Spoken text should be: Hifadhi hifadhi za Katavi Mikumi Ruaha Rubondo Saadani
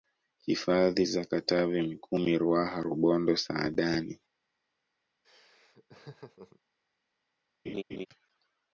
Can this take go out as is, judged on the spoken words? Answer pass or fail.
fail